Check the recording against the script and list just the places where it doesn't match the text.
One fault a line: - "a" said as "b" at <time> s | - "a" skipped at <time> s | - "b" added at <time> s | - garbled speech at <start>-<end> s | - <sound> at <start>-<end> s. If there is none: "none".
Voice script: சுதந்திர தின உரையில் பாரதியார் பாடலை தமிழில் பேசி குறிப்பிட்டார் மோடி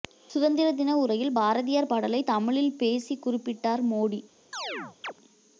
- chirp at 4.5-5.1 s